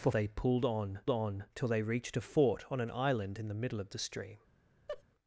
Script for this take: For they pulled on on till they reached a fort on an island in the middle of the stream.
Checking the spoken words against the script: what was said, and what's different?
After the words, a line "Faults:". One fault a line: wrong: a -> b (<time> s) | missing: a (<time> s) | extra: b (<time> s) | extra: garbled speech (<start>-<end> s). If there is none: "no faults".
For they pulled on on till they reached a fort on an island in the middle of the stream.
Faults:
no faults